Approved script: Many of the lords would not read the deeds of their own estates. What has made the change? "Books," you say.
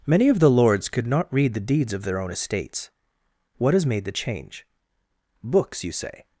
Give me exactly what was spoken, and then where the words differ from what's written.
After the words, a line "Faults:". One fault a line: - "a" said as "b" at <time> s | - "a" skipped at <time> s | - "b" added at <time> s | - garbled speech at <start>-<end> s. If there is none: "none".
Many of the lords could not read the deeds of their own estates. What has made the change? "Books," you say.
Faults:
- "would" said as "could" at 0.9 s